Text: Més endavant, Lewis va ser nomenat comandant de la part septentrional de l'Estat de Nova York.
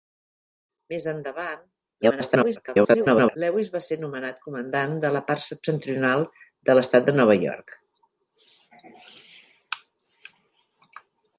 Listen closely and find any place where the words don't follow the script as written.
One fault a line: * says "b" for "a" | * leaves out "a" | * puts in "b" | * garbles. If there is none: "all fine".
* garbles